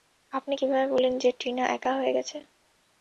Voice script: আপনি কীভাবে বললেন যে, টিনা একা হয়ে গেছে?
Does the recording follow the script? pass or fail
pass